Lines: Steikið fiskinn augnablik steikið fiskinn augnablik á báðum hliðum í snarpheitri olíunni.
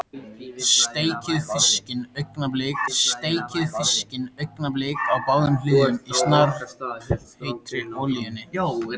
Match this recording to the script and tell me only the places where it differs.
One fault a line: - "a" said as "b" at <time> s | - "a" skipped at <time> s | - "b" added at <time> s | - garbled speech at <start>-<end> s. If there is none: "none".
none